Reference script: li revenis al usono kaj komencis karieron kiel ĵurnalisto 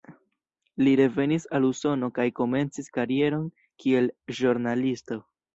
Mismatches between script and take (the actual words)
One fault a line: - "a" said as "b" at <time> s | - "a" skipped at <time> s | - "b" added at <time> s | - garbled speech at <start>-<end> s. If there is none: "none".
none